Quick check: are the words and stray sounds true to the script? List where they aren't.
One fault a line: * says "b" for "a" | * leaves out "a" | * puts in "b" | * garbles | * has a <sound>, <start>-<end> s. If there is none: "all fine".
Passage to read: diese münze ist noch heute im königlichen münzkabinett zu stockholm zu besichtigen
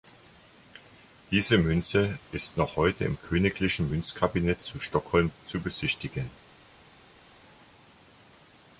all fine